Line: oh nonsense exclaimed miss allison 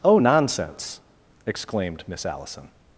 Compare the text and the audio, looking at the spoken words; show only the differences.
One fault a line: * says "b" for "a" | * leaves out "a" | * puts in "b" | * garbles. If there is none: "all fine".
all fine